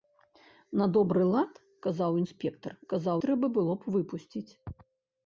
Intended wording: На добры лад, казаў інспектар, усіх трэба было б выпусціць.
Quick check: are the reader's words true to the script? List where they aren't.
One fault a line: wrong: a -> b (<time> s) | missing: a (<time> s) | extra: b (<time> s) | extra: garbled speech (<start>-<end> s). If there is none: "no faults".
wrong: усіх -> казаў (2.9 s)